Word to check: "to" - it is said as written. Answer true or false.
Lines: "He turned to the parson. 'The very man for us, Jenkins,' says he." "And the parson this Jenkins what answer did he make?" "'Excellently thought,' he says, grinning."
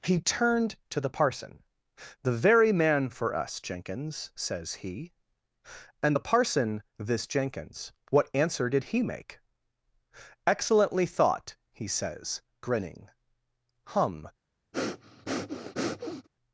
true